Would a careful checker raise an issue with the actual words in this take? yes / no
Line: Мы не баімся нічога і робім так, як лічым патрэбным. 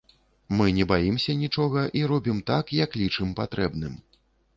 no